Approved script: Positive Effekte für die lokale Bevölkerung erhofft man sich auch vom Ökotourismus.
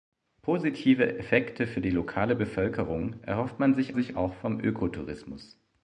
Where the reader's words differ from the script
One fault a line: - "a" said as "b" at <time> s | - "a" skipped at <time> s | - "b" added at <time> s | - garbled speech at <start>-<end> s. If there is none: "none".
- "sich" added at 3.9 s